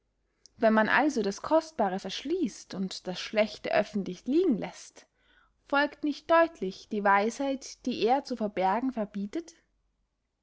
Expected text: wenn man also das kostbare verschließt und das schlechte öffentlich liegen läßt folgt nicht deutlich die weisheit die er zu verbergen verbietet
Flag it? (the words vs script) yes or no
no